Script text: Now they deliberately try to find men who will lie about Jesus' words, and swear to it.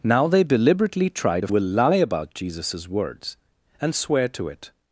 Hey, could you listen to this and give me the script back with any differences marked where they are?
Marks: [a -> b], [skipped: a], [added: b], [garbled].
Now they deliberately try to [skipped: find men who] will lie about Jesus' words, and swear to it.